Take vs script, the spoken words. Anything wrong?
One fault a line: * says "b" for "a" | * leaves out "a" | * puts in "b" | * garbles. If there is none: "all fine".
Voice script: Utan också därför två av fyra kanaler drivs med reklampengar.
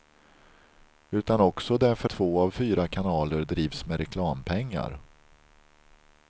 all fine